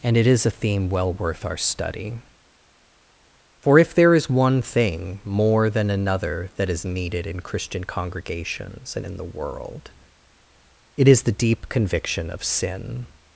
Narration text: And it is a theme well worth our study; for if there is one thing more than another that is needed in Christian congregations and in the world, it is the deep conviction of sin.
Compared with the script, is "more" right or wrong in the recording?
right